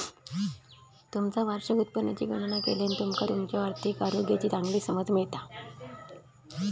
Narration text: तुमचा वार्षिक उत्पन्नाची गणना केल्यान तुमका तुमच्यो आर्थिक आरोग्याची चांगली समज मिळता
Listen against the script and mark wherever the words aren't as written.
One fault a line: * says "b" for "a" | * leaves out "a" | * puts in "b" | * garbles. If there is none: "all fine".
all fine